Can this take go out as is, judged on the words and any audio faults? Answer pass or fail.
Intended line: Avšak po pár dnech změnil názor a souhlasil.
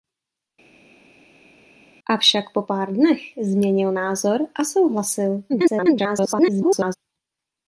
fail